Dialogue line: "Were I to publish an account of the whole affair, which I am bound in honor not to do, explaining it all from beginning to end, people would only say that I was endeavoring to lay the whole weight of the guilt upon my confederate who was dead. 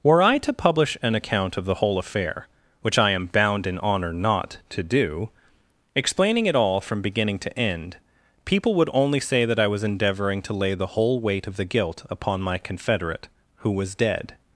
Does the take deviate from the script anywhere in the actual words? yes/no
no